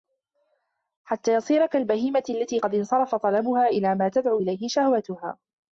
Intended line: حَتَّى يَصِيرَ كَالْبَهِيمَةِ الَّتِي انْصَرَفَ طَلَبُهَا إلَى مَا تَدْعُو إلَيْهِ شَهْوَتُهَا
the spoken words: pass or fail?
fail